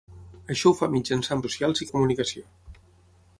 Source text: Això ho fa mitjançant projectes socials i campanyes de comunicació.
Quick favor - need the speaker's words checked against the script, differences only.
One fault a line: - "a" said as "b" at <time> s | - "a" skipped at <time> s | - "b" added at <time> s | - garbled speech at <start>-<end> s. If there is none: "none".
- "projectes" skipped at 1.4 s
- "campanyes" skipped at 1.9 s